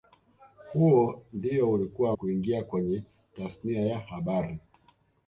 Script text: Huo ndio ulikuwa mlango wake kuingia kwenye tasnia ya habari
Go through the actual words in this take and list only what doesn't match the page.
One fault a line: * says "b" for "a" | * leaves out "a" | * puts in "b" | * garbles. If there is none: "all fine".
* leaves out "mlango wake"